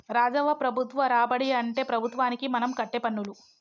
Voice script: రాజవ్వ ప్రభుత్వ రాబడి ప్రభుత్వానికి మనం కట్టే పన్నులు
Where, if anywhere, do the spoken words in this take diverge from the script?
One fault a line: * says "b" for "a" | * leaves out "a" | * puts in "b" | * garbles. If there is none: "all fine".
* puts in "అంటే"